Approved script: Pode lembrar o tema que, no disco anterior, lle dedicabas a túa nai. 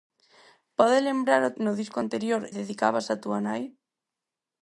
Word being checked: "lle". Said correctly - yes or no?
no